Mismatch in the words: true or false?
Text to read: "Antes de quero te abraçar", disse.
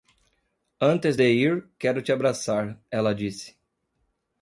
true